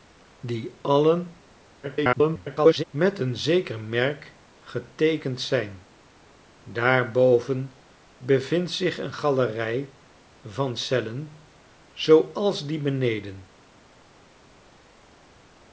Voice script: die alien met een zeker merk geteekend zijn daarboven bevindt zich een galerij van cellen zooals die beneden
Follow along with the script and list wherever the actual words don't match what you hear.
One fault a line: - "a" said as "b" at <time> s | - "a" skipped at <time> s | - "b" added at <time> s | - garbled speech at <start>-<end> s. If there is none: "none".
- garbled speech at 1.8-2.8 s